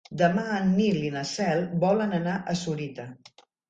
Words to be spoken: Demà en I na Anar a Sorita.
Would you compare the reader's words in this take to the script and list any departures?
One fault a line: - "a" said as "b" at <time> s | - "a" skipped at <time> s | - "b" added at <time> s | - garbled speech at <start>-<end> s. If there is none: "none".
- "Nil" added at 0.8 s
- "Cel volen" added at 1.3 s